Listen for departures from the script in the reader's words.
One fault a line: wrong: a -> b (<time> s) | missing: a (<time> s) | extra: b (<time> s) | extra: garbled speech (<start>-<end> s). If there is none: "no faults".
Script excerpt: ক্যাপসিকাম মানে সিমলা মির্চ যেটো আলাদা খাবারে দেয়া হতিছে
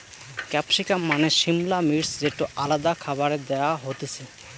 no faults